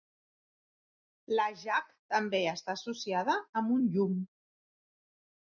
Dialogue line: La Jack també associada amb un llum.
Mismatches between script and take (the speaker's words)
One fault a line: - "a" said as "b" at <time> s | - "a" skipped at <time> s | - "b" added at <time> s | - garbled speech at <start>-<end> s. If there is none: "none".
- "està" added at 2.5 s